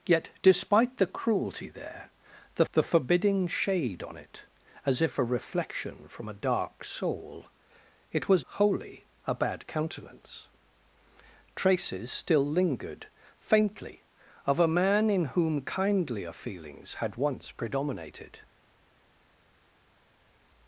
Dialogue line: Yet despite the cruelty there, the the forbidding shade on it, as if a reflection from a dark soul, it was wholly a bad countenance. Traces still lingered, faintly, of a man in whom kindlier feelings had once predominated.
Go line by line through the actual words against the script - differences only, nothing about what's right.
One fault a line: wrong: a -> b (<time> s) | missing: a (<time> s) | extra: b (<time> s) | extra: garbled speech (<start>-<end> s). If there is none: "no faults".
no faults